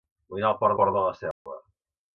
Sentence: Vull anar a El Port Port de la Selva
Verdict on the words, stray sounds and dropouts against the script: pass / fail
fail